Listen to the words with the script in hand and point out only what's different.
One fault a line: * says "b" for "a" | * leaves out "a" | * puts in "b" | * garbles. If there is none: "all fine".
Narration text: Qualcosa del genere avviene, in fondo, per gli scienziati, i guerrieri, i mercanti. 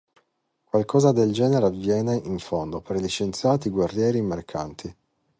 all fine